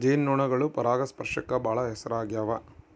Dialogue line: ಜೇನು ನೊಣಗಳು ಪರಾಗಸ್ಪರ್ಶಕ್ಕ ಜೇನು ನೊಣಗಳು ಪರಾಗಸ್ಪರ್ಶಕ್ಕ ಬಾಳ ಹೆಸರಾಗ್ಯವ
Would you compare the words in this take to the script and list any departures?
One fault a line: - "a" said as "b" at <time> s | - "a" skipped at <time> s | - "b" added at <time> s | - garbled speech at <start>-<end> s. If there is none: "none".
- "ಜೇನು ನೊಣಗಳು ಪರಾಗಸ್ಪರ್ಶಕ್ಕ" skipped at 1.5 s